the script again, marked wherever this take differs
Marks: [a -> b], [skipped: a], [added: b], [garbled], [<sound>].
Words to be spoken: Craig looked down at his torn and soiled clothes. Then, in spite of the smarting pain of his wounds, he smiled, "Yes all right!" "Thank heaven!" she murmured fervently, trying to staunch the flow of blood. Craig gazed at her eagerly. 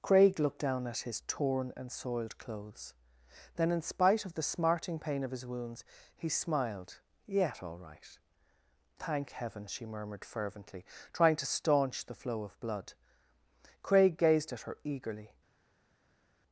Craig looked down at his torn and soiled clothes. Then, in spite of the smarting pain of his wounds, he smiled, ["Yes -> Yet] all right!" "Thank heaven!" she murmured fervently, trying to staunch the flow of blood. Craig gazed at her eagerly.